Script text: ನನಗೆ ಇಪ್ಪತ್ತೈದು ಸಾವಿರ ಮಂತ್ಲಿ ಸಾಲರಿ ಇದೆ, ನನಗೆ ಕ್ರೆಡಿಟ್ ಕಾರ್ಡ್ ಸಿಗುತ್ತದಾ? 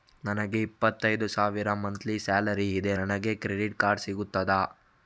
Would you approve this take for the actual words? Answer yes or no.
yes